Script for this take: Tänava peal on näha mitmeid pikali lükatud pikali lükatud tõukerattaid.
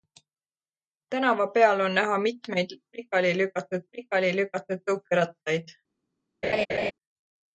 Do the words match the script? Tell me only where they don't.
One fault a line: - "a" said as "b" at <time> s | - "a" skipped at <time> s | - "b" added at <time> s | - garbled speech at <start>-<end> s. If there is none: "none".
none